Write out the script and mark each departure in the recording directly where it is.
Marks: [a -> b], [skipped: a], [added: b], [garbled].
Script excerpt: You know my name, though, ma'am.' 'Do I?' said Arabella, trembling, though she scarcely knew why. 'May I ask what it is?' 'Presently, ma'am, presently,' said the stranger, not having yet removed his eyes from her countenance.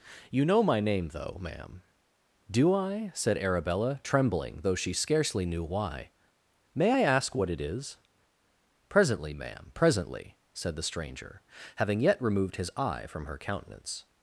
You know my name, though, ma'am.' 'Do I?' said Arabella, trembling, though she scarcely knew why. 'May I ask what it is?' 'Presently, ma'am, presently,' said the stranger, [skipped: not] having yet removed his [eyes -> eye] from her countenance.